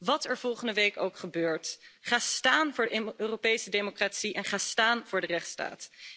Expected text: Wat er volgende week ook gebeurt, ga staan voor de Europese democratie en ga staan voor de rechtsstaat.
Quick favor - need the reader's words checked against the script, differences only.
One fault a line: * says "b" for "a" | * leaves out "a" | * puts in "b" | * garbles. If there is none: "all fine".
all fine